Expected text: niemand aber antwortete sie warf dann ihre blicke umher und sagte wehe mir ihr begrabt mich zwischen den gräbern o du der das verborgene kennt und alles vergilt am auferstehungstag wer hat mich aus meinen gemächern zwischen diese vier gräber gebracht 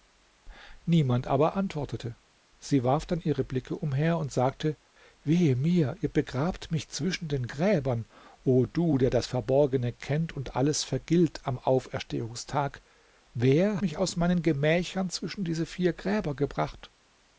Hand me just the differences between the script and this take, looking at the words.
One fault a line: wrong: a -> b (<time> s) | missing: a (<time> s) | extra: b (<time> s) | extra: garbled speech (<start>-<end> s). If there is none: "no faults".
missing: hat (13.8 s)